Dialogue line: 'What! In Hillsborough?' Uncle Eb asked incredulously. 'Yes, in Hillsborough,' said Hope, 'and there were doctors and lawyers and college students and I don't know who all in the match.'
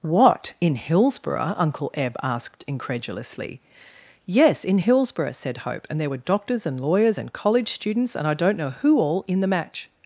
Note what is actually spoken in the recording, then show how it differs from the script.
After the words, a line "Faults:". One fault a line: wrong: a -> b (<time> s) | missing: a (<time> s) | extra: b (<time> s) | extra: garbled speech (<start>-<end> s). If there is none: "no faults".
'What! In Hillsborough?' Uncle Eb asked incredulously. 'Yes, in Hillsborough,' said Hope, 'and there were doctors and lawyers and college students and I don't know who all in the match.'
Faults:
no faults